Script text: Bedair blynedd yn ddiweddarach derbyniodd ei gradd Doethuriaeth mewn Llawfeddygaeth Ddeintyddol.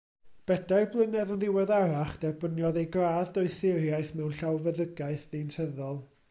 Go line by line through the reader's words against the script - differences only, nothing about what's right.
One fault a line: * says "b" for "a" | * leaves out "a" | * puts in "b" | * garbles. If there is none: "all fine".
all fine